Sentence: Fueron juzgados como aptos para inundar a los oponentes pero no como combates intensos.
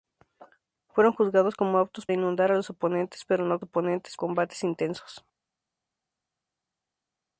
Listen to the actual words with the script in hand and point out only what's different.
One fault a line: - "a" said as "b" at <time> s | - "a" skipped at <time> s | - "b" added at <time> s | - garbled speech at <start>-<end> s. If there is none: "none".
- "para" skipped at 2.1 s
- "como" said as "oponentes" at 3.6 s